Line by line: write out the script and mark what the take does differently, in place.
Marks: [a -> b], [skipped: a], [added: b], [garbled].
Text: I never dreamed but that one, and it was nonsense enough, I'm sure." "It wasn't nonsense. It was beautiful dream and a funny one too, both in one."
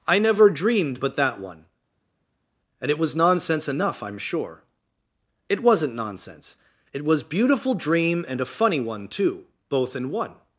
I never dreamed but that one, and it was nonsense enough, I'm sure." "It wasn't nonsense. It was beautiful dream and a funny one too, both in one."